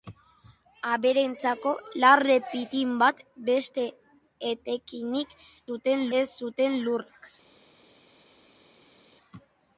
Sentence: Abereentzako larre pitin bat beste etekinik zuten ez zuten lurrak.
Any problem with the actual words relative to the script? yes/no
no